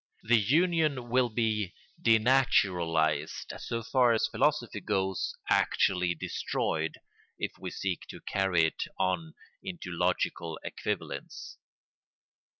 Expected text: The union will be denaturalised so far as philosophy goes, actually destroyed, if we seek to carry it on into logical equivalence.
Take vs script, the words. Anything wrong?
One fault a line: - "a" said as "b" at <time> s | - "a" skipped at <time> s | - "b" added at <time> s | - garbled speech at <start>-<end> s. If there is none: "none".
none